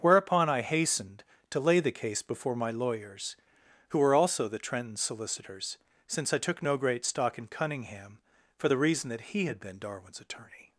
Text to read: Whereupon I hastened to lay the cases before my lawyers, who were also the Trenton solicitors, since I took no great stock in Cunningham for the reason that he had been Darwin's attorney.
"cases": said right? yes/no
no